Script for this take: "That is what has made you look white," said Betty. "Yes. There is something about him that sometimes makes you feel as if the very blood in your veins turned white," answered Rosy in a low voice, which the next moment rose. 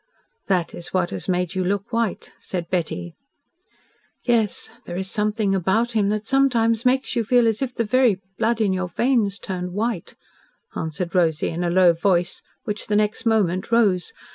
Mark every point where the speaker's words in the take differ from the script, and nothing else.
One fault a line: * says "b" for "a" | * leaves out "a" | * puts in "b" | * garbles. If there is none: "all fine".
all fine